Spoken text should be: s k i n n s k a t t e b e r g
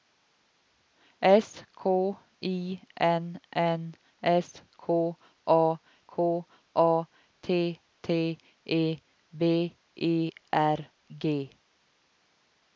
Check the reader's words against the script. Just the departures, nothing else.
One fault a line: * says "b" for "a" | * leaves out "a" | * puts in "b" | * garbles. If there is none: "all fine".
* puts in "k a"